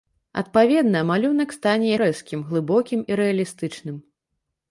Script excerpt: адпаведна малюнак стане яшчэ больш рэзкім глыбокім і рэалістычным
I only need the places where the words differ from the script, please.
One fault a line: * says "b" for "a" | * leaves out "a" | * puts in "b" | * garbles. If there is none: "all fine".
* leaves out "яшчэ больш"